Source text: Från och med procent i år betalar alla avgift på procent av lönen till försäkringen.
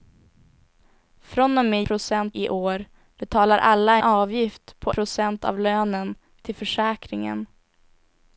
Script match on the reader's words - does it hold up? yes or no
yes